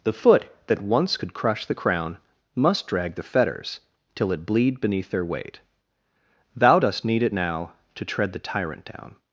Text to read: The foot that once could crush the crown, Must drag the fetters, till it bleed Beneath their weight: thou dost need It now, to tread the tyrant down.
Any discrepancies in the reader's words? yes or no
no